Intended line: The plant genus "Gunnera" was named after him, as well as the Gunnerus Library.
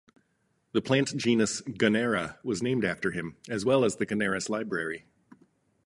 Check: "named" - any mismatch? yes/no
no